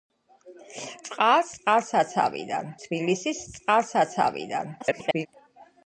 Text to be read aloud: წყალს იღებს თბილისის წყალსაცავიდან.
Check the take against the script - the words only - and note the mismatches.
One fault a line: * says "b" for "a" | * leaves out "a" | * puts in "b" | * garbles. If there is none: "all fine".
* says "წყალსაცავიდან" for "იღებს"
* garbles